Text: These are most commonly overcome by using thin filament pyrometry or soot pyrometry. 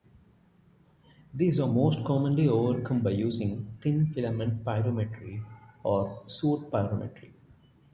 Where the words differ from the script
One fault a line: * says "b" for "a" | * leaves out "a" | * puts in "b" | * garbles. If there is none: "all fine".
all fine